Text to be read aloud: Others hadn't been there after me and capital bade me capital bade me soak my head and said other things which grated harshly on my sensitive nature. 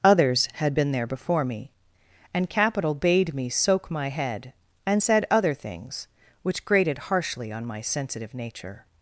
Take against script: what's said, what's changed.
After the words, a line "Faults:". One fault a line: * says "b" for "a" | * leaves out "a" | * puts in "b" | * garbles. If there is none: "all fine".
Others had been there before me and capital bade me soak my head and said other things which grated harshly on my sensitive nature.
Faults:
* says "had" for "hadn't"
* says "before" for "after"
* leaves out "capital bade me"